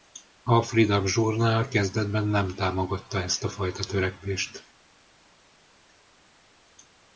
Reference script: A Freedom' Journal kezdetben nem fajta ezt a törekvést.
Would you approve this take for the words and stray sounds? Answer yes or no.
no